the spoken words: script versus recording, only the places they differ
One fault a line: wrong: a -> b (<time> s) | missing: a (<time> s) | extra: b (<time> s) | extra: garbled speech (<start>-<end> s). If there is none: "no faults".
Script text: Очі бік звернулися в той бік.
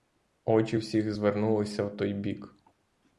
wrong: бік -> всіх (0.7 s)